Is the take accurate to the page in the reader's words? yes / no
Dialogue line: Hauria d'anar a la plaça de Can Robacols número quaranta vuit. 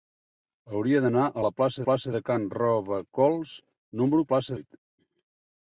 no